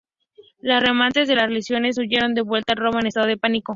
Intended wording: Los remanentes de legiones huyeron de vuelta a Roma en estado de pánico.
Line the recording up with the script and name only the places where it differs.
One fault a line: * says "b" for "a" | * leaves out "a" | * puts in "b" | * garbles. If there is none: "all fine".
* puts in "las"